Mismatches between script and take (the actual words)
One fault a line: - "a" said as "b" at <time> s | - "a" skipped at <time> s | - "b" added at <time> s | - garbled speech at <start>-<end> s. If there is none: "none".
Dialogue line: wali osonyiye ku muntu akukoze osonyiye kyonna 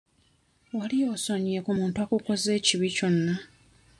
- "osonyiye" said as "ekibi" at 2.6 s